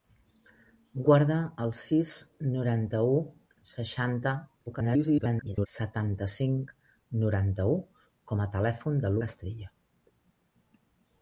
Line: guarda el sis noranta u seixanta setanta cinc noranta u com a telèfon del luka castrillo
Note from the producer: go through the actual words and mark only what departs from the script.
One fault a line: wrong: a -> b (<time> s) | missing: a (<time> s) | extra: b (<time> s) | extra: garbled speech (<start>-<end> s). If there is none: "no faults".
extra: garbled speech (4.7-5.7 s)
missing: luka (9.2 s)